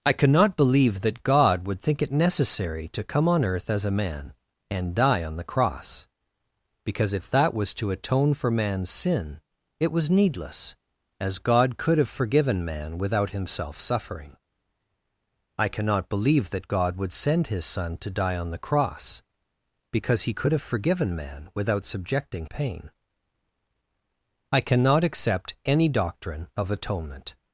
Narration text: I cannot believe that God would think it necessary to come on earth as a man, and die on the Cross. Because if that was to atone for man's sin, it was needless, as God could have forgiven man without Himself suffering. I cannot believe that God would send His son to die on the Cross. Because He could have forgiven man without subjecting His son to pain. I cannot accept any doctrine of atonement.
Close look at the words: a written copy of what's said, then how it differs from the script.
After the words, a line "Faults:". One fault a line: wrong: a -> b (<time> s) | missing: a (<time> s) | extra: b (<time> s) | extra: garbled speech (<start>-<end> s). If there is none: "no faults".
I cannot believe that God would think it necessary to come on earth as a man, and die on the Cross. Because if that was to atone for man's sin, it was needless, as God could have forgiven man without Himself suffering. I cannot believe that God would send His son to die on the Cross. Because He could have forgiven man without subjecting Pain. I cannot accept any doctrine of atonement.
Faults:
missing: His son to (22.5 s)